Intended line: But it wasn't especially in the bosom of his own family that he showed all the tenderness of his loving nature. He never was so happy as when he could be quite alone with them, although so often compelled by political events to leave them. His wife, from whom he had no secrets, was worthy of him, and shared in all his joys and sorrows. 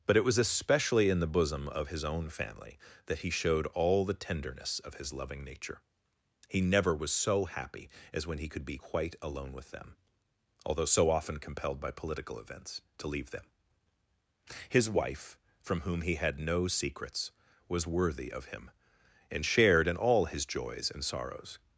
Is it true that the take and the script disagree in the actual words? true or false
true